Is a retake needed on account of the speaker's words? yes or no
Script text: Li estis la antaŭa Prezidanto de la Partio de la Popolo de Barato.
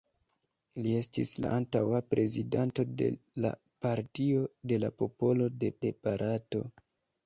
yes